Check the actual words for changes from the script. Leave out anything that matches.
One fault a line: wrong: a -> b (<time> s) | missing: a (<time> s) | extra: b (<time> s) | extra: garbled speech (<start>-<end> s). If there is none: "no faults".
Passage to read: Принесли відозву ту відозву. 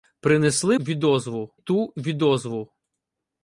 no faults